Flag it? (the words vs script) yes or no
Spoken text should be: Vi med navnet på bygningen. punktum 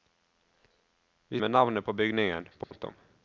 no